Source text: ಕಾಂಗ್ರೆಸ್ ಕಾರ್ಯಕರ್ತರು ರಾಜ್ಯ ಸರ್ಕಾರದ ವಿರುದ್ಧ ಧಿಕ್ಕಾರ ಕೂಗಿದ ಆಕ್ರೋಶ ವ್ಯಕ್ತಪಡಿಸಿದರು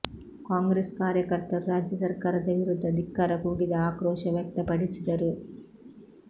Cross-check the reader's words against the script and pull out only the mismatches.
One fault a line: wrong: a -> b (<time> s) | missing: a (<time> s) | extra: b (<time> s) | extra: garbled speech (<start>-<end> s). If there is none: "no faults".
no faults